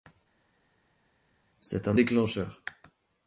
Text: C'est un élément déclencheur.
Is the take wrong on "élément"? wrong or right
wrong